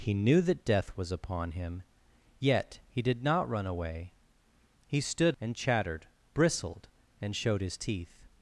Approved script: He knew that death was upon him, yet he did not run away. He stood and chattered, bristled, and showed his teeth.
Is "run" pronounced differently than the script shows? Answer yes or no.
no